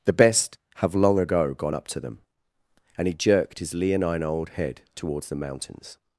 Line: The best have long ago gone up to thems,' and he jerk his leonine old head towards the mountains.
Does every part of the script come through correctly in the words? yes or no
no